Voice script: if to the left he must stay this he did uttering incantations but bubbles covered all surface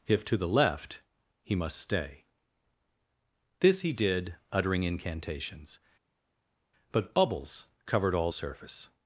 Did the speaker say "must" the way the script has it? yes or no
yes